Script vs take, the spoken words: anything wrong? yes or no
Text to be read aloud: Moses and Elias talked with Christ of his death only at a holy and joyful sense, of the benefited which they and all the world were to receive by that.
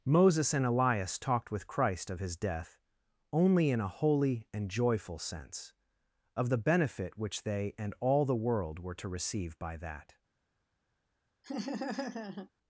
yes